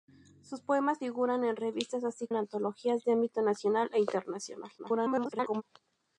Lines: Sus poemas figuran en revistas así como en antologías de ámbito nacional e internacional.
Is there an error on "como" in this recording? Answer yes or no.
yes